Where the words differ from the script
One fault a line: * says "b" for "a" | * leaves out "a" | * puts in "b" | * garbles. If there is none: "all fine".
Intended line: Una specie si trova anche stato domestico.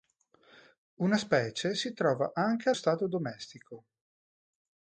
all fine